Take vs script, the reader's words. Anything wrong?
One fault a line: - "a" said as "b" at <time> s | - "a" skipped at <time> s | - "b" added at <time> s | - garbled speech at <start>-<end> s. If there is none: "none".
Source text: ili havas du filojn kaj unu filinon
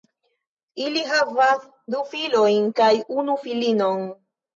none